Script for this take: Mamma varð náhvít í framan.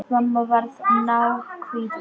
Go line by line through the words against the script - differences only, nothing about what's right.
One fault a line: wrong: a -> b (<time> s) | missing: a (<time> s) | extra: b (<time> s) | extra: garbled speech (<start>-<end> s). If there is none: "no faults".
no faults